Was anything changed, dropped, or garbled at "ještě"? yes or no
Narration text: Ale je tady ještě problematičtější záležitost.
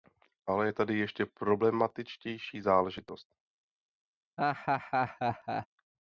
no